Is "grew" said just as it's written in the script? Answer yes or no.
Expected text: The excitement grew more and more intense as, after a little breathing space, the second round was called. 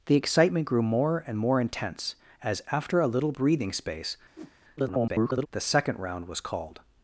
yes